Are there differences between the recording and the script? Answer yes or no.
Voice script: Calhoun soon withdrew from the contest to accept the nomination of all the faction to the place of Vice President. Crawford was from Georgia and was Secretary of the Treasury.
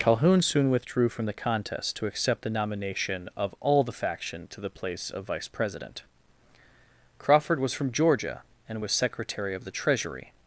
no